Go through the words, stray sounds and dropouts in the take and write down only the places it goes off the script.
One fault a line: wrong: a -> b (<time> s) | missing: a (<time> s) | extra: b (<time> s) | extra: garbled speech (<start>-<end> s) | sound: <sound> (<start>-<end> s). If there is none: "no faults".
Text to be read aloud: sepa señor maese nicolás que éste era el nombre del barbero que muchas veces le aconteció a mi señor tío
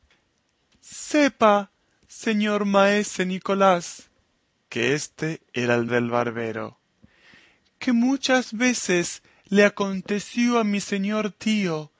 missing: nombre (5.9 s)